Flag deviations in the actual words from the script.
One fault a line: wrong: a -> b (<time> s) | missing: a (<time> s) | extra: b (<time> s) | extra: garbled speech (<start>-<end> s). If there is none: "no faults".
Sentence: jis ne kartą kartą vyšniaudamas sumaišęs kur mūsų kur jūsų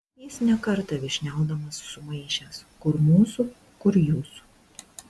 missing: kartą (1.0 s)